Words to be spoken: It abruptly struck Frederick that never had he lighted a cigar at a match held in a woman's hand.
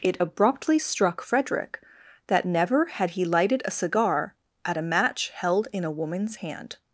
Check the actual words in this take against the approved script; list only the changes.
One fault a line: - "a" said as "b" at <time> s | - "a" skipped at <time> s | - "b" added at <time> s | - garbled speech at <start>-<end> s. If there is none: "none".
none